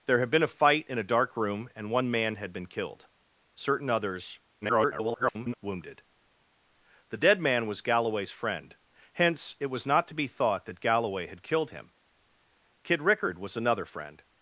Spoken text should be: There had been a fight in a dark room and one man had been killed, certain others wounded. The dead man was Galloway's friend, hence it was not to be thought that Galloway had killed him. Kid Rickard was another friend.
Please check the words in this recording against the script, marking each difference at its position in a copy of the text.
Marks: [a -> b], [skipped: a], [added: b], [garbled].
There had been a fight in a dark room and one man had been killed, certain others [garbled] wounded. The dead man was Galloway's friend, hence it was not to be thought that Galloway had killed him. Kid Rickard was another friend.